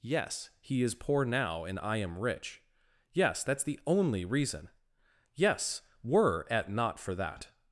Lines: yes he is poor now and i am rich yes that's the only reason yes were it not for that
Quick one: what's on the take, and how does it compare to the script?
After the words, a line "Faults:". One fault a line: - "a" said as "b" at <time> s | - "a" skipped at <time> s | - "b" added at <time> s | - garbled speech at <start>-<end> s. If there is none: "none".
yes he is poor now and i am rich yes that's the only reason yes were at not for that
Faults:
- "it" said as "at" at 6.5 s